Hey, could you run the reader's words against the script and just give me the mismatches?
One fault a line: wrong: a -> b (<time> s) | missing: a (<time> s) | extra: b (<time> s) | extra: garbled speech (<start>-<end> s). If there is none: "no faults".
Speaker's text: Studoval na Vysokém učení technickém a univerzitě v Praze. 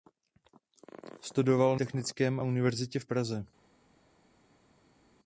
missing: na Vysokém učení (1.8 s)